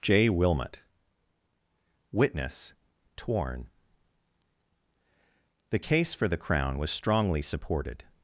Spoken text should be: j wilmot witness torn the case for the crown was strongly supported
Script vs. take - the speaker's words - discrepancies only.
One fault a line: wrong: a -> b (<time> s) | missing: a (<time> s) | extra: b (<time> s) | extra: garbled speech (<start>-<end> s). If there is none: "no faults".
no faults